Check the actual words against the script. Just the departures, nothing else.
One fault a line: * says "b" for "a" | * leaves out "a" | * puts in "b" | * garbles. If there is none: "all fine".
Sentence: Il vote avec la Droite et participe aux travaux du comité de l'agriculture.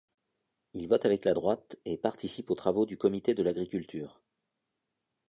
all fine